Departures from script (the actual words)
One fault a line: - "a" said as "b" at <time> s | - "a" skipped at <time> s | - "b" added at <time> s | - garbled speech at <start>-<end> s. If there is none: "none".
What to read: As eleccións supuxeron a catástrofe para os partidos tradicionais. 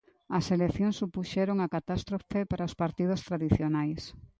none